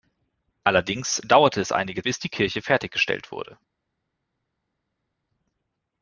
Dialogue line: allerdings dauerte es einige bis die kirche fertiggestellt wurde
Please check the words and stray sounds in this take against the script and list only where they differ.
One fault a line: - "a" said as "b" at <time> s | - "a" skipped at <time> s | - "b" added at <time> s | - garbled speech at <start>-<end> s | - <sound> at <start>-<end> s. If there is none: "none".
none